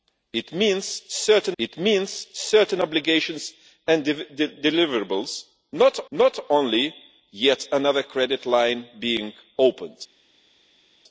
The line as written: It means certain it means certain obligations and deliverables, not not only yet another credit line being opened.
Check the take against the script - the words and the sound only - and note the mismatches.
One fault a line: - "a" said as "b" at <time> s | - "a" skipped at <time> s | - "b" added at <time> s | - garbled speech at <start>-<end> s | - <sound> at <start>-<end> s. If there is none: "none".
none